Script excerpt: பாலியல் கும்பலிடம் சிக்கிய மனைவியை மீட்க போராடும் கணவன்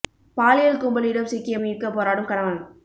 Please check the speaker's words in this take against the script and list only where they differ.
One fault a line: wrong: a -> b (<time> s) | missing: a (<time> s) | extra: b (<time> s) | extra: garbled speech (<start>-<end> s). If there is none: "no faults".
missing: மனைவியை (1.6 s)